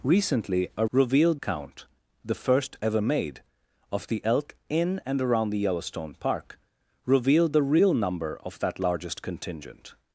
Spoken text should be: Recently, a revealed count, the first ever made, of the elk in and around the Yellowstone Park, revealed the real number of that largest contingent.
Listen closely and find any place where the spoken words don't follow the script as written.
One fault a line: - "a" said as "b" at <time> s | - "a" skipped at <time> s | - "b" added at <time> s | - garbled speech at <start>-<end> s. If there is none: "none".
none